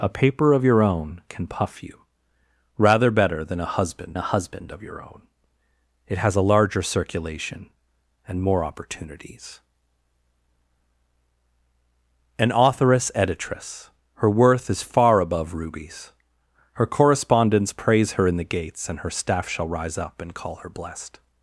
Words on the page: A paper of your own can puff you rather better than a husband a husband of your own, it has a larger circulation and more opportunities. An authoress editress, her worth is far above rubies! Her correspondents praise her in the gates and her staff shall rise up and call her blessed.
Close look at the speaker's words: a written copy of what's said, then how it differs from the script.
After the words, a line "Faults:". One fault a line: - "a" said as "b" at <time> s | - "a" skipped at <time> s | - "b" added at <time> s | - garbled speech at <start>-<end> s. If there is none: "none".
A paper of your own can puff you rather better than a husband a husband of your own, it has a larger circulation and more opportunities. An authoress editress, her worth is far above rubies! Her correspondents praise her in the gates and her staff shall rise up and call her blessed.
Faults:
none